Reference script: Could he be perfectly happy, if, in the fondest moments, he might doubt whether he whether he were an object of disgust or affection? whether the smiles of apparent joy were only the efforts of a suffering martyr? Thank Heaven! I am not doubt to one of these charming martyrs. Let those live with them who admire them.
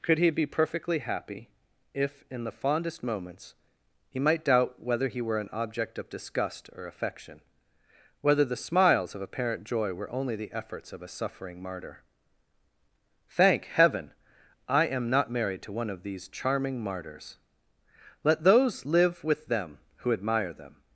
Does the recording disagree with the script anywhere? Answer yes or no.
yes